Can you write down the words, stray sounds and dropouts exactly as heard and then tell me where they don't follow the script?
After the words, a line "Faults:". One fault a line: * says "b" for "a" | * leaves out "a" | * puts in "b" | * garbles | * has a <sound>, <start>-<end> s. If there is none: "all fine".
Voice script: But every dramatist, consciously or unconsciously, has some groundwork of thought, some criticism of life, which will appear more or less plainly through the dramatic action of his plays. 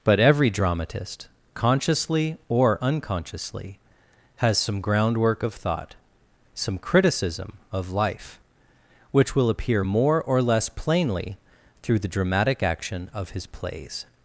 But every dramatist, consciously or unconsciously, has some groundwork of thought, some criticism of life, which will appear more or less plainly through the dramatic action of his plays.
Faults:
all fine